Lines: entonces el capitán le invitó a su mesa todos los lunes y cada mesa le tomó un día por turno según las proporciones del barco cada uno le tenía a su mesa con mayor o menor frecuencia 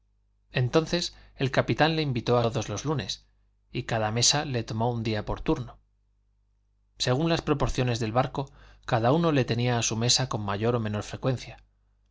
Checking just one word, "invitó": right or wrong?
right